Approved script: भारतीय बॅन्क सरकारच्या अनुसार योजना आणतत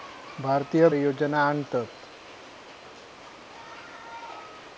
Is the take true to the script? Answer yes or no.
no